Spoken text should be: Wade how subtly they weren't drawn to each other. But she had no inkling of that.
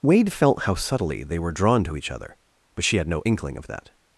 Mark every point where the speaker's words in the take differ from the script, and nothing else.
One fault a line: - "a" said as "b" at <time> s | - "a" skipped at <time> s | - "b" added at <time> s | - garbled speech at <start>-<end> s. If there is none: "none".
- "felt" added at 0.3 s
- "weren't" said as "were" at 1.4 s